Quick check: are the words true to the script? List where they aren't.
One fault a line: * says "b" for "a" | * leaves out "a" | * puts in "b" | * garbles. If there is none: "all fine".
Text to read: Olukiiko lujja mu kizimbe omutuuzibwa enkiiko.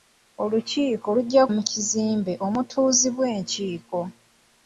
all fine